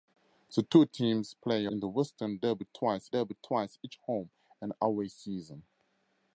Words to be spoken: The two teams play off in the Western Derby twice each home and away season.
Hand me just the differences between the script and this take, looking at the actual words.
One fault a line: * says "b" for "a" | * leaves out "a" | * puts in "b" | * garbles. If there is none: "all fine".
* leaves out "off"
* puts in "Derby twice"